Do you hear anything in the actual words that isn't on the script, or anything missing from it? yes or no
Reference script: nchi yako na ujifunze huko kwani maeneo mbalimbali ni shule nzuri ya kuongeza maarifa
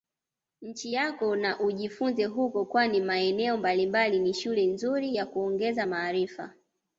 no